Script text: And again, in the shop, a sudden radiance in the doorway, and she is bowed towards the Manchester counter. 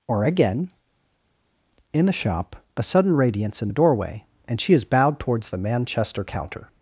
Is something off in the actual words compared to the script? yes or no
yes